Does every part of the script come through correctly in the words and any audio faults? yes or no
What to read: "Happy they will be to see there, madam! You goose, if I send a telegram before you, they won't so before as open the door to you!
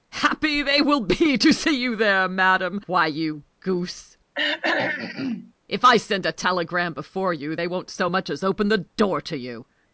no